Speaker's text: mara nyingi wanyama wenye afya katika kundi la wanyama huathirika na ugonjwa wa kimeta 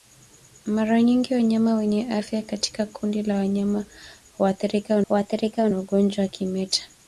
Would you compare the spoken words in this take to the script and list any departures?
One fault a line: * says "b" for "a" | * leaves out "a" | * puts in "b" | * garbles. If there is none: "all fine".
* puts in "huathirika"